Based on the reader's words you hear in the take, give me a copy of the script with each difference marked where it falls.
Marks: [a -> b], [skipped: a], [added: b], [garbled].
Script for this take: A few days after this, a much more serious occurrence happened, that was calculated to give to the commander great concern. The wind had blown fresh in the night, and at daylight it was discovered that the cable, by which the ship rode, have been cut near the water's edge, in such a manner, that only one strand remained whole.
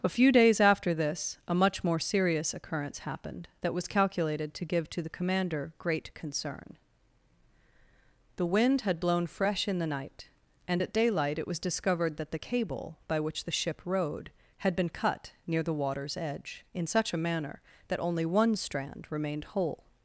A few days after this, a much more serious occurrence happened, that was calculated to give to the commander great concern. The wind had blown fresh in the night, and at daylight it was discovered that the cable, by which the ship rode, [have -> had] been cut near the water's edge, in such a manner, that only one strand remained whole.